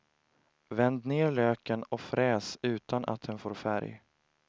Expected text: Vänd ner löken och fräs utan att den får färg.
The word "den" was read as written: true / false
true